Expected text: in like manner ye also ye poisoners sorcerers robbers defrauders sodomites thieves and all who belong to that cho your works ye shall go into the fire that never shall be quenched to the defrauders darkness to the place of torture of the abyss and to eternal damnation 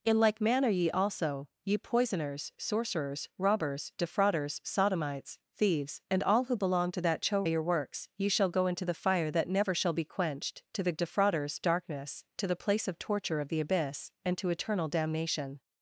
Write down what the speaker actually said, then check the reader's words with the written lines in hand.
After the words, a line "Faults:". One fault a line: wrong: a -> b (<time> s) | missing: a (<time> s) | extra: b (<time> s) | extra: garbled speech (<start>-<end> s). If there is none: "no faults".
in like manner ye also ye poisoners sorcerers robbers defrauders sodomites thieves and all who belong to that cho your works ye shall go into the fire that never shall be quenched to the defrauders darkness to the place of torture of the abyss and to eternal damnation
Faults:
no faults